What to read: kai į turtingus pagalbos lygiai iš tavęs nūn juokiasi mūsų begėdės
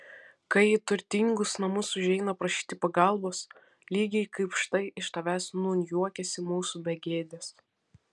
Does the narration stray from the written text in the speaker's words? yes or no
yes